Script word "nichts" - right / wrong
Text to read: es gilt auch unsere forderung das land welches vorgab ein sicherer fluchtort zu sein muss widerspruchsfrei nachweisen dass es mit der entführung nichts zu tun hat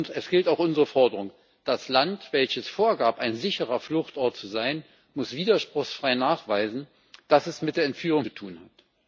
wrong